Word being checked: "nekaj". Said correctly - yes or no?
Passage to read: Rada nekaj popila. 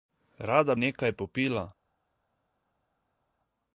yes